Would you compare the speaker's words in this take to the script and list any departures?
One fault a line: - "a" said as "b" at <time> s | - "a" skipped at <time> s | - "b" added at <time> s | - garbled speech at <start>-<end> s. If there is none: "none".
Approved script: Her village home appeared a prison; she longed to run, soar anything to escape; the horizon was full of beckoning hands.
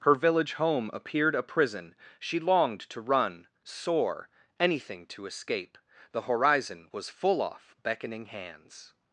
- "of" said as "off" at 7.4 s